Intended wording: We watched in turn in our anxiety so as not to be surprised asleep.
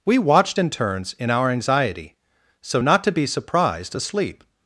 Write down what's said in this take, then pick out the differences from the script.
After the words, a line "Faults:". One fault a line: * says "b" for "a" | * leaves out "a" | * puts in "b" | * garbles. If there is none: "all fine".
We watched in turns in our anxiety so not to be surprised asleep.
Faults:
* says "turns" for "turn"
* leaves out "as"